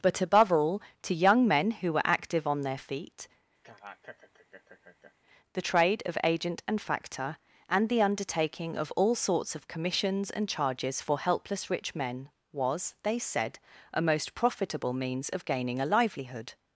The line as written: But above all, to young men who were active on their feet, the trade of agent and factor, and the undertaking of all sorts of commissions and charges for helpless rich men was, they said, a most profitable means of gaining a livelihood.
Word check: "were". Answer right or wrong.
right